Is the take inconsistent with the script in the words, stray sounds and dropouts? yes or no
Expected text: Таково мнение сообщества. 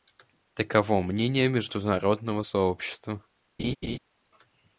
yes